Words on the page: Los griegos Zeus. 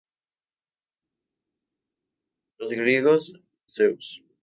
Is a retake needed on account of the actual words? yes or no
no